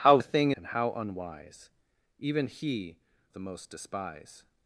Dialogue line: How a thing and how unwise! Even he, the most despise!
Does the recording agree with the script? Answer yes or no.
yes